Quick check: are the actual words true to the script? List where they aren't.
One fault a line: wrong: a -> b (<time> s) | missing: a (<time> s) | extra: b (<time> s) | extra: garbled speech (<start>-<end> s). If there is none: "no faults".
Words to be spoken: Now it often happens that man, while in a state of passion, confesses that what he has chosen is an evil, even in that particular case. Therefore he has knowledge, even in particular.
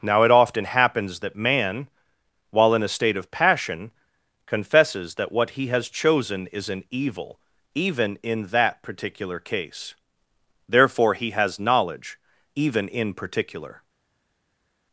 no faults